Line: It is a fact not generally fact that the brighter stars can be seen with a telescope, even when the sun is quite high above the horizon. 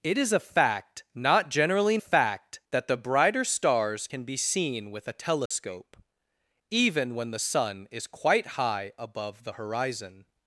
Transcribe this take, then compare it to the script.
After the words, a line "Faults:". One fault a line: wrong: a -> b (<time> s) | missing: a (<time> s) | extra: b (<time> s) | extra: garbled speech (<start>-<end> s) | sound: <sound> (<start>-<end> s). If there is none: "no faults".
It is a fact not generally fact that the brighter stars can be seen with a telescope, even when the sun is quite high above the horizon.
Faults:
sound: dropout (5.5-5.5 s)